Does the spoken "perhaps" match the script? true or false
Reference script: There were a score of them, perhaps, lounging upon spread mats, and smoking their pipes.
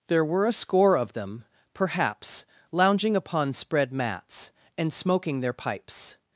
true